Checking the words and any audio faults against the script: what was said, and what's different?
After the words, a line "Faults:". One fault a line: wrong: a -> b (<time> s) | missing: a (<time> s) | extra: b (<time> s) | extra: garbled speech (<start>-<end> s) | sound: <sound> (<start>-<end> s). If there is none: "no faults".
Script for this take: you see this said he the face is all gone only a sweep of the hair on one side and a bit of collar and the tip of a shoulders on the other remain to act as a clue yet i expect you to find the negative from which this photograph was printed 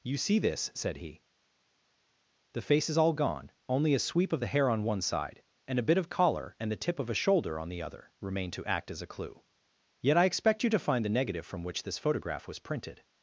you see this said he the face is all gone only a sweep of the hair on one side and a bit of collar and the tip of a shoulder on the other remain to act as a clue yet i expect you to find the negative from which this photograph was printed
Faults:
wrong: shoulders -> shoulder (7.1 s)